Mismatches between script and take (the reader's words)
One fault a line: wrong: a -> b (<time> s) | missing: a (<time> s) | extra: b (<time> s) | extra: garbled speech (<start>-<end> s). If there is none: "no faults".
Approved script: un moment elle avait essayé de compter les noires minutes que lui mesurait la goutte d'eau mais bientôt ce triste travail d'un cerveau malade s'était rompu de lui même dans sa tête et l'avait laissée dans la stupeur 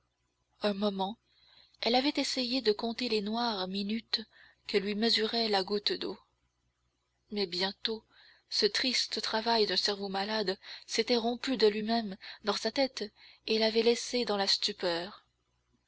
no faults